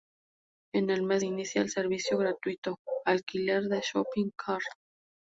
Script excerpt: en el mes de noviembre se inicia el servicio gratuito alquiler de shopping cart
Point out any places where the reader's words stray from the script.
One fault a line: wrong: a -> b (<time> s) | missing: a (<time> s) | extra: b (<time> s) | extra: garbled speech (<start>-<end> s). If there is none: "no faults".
missing: de noviembre se (1.2 s)